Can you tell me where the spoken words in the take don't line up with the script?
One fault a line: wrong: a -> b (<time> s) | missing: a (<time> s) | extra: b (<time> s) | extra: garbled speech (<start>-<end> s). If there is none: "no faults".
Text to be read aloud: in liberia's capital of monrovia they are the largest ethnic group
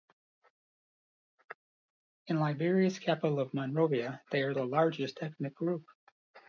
no faults